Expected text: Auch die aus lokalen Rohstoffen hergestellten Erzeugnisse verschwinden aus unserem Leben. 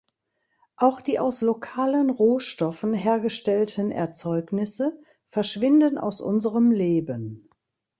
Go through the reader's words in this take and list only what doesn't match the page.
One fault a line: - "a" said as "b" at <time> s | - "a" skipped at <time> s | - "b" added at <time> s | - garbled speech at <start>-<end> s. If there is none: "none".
none